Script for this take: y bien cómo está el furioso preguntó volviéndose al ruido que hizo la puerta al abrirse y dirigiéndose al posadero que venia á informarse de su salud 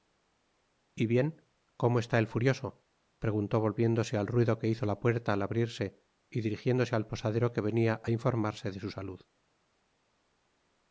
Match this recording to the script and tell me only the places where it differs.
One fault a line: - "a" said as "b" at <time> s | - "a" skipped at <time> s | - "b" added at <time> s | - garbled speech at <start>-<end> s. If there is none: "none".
none